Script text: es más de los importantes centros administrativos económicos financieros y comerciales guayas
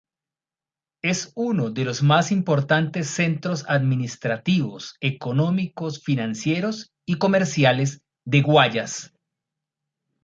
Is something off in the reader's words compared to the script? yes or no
yes